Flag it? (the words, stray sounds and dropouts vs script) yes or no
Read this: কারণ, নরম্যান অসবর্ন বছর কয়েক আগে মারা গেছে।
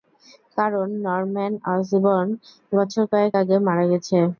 no